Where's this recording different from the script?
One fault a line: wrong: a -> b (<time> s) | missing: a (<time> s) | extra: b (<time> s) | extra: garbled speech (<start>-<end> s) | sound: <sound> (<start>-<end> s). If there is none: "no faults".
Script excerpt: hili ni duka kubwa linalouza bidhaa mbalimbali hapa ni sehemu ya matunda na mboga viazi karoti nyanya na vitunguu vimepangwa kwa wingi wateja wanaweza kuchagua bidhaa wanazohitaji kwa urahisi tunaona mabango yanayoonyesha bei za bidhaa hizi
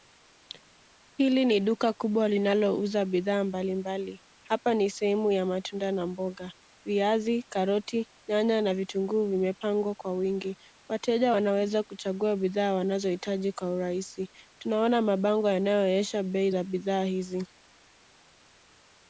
no faults